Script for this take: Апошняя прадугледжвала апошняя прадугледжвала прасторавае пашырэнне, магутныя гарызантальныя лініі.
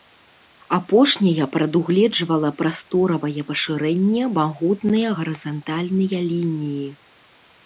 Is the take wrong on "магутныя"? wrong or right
right